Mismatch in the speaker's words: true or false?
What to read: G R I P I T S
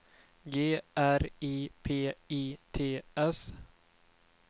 false